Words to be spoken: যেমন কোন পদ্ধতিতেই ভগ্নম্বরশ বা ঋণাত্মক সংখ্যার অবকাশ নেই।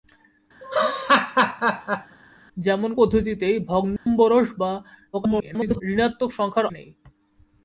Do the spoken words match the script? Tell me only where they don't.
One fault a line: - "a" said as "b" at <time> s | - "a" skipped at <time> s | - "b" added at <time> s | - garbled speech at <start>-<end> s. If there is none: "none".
- "কোন" skipped at 2.9 s
- garbled speech at 5.1-5.8 s
- "অবকাশ" skipped at 6.7 s